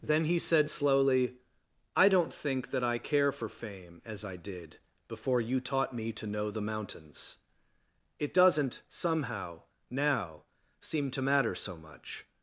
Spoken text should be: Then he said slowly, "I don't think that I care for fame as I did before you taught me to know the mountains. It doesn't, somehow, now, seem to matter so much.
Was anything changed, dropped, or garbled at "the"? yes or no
no